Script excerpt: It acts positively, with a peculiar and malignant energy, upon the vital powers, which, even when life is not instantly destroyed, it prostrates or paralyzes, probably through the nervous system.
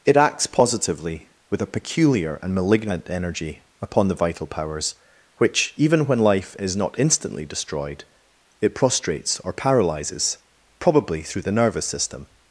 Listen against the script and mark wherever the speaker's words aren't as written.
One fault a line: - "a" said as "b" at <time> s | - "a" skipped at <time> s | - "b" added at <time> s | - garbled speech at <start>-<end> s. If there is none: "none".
none